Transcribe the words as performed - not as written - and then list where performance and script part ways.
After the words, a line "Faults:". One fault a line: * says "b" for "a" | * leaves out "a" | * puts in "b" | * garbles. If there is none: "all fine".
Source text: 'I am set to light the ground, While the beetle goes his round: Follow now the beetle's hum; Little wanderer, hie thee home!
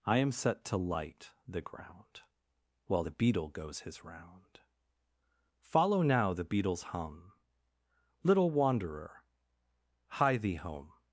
'I am set to light the ground, While the beetle goes his round: Follow now the beetle's hum; Little wanderer, hie thee home!
Faults:
all fine